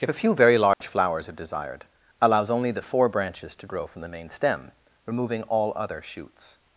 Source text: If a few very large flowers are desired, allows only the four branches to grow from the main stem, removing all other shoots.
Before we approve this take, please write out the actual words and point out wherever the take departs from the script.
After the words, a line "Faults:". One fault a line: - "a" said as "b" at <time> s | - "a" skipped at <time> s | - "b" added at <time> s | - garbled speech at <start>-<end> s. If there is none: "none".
If a few very large flowers are desired, allows only the four branches to grow from the main stem, removing all other shoots.
Faults:
none